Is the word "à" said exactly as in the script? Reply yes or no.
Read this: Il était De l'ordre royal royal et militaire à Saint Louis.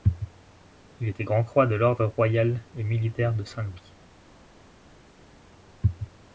no